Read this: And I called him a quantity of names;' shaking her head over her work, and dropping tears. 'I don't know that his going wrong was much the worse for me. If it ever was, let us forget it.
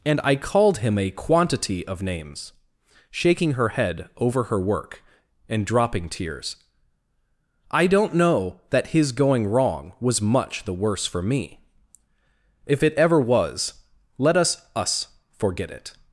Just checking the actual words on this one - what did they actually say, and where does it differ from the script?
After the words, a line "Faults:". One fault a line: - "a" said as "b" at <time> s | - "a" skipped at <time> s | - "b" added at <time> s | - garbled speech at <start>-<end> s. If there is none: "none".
And I called him a quantity of names;' shaking her head over her work, and dropping tears. 'I don't know that his going wrong was much the worse for me. If it ever was, let us us forget it.
Faults:
- "us" added at 14.7 s